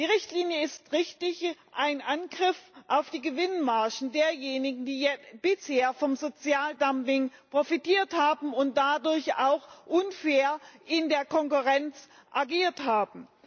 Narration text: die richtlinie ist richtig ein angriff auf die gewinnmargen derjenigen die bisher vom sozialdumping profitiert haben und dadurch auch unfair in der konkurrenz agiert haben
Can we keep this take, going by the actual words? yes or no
yes